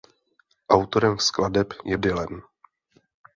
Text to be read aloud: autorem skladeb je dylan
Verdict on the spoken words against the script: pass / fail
pass